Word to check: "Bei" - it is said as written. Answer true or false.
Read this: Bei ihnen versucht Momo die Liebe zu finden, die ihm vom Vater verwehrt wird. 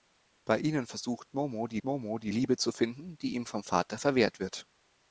true